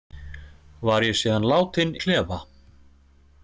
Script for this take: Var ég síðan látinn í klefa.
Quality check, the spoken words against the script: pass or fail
pass